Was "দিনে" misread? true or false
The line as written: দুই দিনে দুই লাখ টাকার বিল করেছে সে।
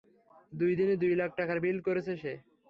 false